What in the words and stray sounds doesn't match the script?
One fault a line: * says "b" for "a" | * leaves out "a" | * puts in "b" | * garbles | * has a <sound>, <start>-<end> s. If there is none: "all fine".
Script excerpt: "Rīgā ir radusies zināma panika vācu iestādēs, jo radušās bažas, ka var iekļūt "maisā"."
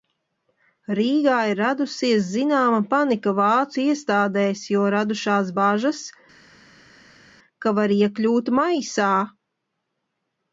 all fine